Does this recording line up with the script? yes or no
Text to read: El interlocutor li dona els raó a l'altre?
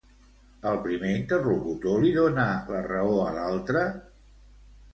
no